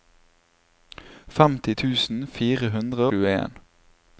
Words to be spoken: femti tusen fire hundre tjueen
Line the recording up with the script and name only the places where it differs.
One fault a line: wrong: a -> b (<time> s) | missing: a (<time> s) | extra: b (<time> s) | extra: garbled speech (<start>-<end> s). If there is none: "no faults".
no faults